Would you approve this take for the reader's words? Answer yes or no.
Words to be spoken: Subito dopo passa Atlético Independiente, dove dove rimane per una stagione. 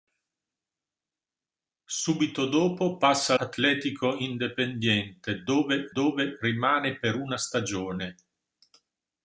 yes